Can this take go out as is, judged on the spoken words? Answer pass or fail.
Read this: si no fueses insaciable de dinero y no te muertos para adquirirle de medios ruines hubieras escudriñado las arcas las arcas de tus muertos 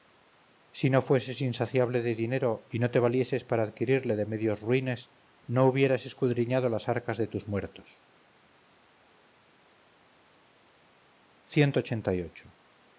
fail